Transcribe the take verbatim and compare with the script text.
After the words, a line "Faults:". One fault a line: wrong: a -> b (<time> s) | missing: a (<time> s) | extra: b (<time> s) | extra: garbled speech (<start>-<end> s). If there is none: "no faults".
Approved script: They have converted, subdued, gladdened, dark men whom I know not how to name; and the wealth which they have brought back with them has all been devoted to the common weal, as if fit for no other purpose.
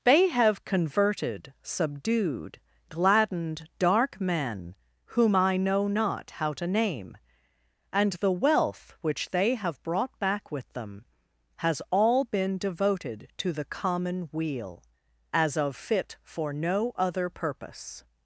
They have converted, subdued, gladdened, dark men whom I know not how to name; and the wealth which they have brought back with them has all been devoted to the common weal, as of fit for no other purpose.
Faults:
wrong: if -> of (15.6 s)